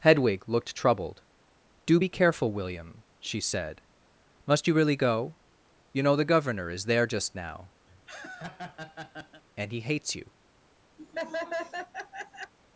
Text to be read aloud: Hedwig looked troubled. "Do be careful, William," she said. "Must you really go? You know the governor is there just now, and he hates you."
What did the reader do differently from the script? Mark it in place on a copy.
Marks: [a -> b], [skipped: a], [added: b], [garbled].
Hedwig looked troubled. "Do be careful, William," she said. "Must you really go? You know the governor is there just now, and he hates you."